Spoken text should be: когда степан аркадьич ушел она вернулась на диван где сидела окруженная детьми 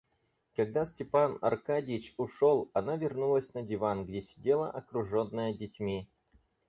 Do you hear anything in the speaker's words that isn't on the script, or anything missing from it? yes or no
no